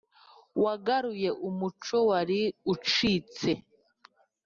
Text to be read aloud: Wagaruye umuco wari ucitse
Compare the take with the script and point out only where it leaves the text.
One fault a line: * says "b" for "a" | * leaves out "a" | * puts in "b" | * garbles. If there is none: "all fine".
all fine